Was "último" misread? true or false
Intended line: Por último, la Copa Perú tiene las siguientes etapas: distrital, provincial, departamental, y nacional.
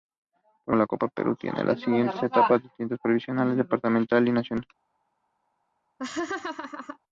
true